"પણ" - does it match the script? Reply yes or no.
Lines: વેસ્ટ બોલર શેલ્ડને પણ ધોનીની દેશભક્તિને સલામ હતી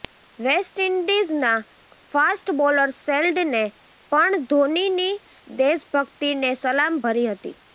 yes